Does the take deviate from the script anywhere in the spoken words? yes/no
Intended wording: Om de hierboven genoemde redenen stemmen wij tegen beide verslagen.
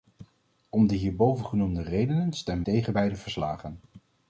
yes